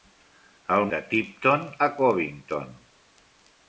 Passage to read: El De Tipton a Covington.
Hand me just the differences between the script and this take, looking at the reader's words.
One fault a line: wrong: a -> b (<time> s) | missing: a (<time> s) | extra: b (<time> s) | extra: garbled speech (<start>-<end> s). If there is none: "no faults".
no faults